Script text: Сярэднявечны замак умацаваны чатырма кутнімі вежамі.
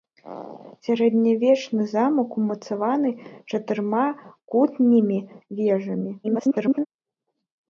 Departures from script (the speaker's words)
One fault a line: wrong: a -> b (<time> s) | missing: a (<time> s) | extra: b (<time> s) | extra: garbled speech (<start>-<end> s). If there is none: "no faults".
extra: garbled speech (6.2-6.9 s)